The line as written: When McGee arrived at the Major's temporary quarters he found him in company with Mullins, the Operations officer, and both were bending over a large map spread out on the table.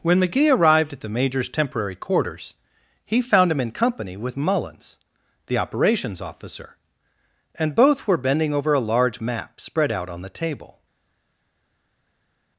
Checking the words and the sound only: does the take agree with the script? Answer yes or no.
yes